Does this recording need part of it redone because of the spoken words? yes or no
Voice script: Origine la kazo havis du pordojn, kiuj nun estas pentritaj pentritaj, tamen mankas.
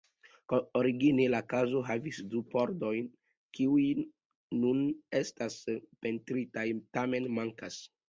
yes